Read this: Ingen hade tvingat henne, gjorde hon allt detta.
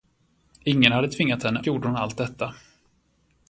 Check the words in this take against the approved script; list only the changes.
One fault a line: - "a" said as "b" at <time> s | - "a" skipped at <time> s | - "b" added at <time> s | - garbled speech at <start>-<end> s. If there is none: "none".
none